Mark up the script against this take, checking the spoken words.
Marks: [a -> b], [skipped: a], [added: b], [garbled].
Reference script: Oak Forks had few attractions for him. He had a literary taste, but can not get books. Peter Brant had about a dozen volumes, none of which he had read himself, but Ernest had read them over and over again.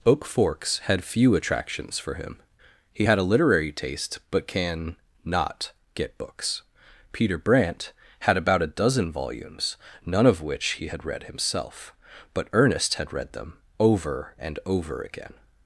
Oak Forks had few attractions for him. He had a literary taste, but can not get books. Peter Brant had about a dozen volumes, none of which he had read himself, but Ernest had read them over and over again.